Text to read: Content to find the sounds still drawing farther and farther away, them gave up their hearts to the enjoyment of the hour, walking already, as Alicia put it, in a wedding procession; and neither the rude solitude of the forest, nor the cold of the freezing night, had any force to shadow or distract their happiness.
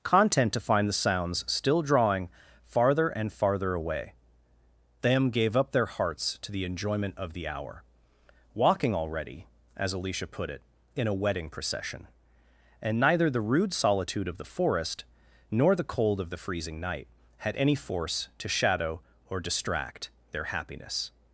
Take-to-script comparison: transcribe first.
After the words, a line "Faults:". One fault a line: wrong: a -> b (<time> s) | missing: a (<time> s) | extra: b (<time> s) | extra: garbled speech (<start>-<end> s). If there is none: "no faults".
Content to find the sounds still drawing farther and farther away, them gave up their hearts to the enjoyment of the hour, walking already, as Alicia put it, in a wedding procession; and neither the rude solitude of the forest, nor the cold of the freezing night, had any force to shadow or distract their happiness.
Faults:
no faults